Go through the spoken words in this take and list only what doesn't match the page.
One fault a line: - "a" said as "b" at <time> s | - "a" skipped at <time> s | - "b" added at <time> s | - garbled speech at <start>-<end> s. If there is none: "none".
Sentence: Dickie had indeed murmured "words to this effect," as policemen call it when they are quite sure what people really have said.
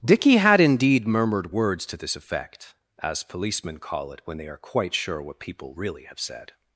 none